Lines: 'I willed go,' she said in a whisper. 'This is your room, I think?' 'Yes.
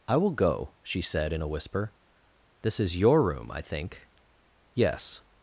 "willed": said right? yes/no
no